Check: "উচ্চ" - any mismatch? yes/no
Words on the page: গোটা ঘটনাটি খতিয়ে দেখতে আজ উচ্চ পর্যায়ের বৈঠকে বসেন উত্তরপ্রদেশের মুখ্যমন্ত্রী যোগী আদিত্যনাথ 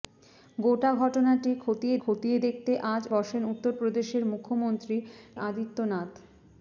yes